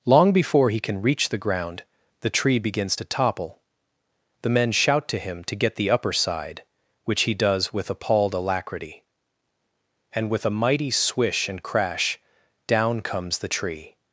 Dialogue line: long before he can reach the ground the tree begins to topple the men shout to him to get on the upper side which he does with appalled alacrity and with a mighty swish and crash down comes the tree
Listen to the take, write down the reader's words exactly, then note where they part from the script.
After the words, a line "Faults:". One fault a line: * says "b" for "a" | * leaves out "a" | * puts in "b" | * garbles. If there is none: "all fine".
long before he can reach the ground the tree begins to topple the men shout to him to get the upper side which he does with appalled alacrity and with a mighty swish and crash down comes the tree
Faults:
* leaves out "on"